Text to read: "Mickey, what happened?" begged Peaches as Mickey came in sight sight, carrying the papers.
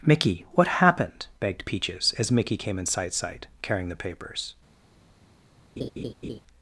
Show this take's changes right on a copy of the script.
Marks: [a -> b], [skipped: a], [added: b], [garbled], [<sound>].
"Mickey, what happened?" begged Peaches as Mickey came in sight sight, carrying the papers. [laugh]